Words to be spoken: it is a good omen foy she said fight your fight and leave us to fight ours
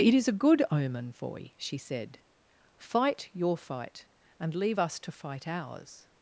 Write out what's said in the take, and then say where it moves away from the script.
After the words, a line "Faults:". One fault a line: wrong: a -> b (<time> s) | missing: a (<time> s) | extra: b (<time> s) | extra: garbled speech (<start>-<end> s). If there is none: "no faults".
it is a good omen foy she said fight your fight and leave us to fight ours
Faults:
no faults